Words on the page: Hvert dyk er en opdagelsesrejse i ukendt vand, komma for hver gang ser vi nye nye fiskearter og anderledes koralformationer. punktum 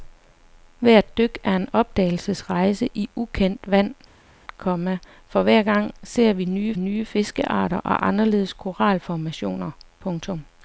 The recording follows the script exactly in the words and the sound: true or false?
true